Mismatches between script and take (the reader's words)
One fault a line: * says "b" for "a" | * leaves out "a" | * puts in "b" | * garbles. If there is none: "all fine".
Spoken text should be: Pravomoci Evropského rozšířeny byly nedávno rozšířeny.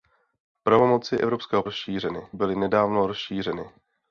all fine